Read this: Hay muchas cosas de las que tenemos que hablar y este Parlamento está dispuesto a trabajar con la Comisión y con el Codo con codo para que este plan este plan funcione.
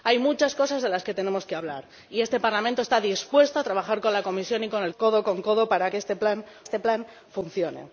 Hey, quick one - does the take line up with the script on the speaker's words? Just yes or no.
yes